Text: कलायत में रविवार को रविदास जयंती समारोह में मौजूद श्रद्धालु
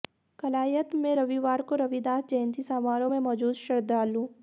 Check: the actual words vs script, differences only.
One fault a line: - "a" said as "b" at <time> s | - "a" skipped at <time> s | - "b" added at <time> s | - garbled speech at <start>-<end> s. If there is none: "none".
none